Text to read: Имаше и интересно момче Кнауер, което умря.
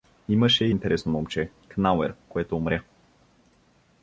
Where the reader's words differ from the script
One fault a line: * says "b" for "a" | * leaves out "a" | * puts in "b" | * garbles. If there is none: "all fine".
all fine